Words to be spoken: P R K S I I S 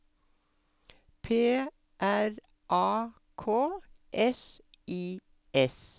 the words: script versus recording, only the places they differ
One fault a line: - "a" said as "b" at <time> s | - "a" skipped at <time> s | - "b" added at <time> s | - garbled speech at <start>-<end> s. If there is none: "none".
- "A" added at 2.7 s
- "I" skipped at 5.2 s